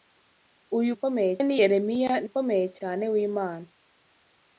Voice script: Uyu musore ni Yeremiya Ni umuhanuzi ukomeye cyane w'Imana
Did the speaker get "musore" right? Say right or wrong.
wrong